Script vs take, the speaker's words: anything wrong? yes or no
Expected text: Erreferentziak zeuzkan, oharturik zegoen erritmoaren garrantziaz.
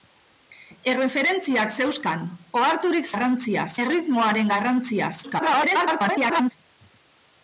yes